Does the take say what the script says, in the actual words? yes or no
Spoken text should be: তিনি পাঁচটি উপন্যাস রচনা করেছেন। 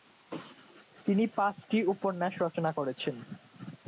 yes